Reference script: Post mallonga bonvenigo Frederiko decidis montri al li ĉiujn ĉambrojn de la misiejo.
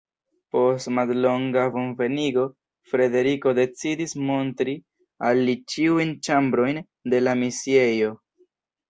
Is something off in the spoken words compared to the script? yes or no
no